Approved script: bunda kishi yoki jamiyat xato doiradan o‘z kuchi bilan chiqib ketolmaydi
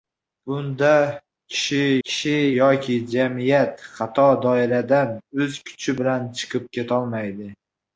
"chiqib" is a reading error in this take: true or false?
false